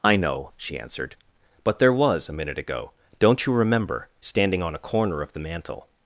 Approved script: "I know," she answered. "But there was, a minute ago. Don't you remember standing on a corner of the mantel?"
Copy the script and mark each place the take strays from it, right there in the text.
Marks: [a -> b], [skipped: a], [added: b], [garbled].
"I know," she answered. "But there was, a minute ago. Don't you remember standing on a corner of the mantel?"